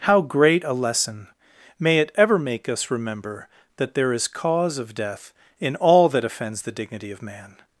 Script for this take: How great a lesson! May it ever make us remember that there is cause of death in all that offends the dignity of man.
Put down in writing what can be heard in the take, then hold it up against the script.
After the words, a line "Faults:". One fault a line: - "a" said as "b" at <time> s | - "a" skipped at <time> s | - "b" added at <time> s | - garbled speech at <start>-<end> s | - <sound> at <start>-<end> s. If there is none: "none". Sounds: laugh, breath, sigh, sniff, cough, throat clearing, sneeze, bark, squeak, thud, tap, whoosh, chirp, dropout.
How great a lesson! May it ever make us remember that there is cause of death in all that offends the dignity of man.
Faults:
none